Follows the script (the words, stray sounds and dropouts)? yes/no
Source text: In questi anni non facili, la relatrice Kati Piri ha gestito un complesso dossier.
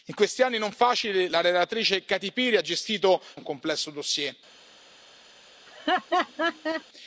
no